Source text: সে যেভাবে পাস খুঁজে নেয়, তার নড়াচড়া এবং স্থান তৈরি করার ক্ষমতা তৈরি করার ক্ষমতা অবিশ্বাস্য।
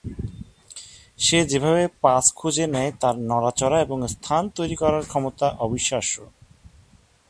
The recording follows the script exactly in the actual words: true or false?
false